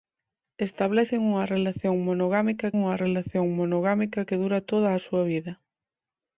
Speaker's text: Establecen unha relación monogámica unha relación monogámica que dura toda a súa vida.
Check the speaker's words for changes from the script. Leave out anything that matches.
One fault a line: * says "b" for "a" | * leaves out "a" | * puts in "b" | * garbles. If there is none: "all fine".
all fine